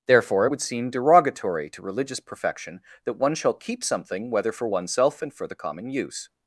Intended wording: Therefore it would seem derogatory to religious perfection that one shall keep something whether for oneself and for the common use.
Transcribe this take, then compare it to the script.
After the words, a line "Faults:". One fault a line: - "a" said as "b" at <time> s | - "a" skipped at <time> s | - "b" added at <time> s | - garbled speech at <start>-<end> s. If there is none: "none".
Therefore it would seem derogatory to religious perfection that one shall keep something whether for oneself and for the common use.
Faults:
none